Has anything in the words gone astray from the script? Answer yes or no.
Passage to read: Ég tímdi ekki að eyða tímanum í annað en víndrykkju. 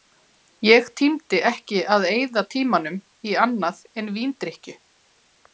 no